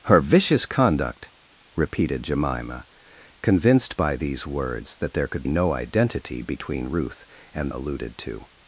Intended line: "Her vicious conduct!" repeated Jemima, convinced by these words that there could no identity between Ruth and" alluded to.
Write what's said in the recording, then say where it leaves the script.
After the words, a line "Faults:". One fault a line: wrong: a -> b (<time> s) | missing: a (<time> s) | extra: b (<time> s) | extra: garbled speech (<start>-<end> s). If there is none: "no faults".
"Her vicious conduct!" repeated Jemima, convinced by these words that there could no identity between Ruth and" alluded to.
Faults:
no faults